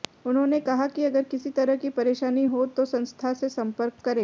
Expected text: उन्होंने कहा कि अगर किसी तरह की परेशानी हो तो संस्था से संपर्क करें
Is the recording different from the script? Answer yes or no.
no